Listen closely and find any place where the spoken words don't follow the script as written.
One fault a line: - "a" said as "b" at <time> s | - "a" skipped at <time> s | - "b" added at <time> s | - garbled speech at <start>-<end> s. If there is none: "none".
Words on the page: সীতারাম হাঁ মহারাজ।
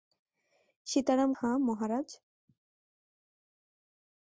none